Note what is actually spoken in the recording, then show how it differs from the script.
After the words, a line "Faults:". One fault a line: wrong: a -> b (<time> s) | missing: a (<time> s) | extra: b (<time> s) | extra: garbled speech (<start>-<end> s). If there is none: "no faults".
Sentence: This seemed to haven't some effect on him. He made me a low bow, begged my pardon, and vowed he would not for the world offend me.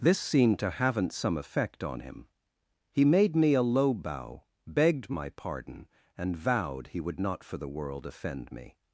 This seemed to haven't some effect on him. He made me a low bow, begged my pardon, and vowed he would not for the world offend me.
Faults:
no faults